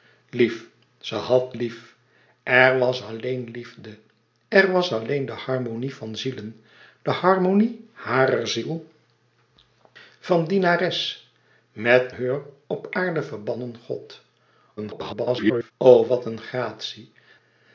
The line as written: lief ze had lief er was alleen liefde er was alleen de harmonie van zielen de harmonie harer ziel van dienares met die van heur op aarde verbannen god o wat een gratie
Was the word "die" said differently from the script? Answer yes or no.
yes